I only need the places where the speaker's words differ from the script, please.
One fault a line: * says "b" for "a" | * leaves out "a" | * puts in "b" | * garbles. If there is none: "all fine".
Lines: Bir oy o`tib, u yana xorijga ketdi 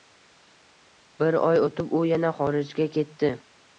all fine